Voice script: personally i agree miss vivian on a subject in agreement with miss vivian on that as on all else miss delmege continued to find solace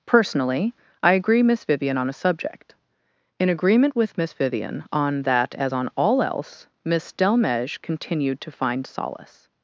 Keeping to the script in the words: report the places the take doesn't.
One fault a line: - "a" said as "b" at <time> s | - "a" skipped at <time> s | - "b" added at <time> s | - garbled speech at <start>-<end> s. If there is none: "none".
none